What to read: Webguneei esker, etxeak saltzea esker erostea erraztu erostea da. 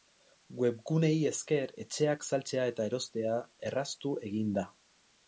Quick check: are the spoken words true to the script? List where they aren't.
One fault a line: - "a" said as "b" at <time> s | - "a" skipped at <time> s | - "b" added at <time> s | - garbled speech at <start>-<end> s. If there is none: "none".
- "esker" said as "eta" at 2.7 s
- "erostea" said as "egin" at 4.3 s